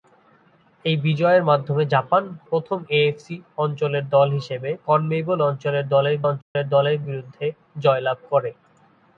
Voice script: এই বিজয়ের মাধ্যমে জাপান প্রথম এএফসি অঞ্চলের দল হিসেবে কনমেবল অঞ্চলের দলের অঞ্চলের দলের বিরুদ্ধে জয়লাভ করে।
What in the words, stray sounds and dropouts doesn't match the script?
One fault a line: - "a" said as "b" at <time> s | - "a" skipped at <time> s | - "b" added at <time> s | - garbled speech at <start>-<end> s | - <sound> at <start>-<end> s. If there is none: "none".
- dropout at 6.4-6.6 s